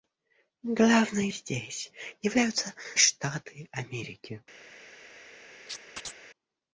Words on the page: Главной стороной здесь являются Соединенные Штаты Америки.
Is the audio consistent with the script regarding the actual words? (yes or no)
no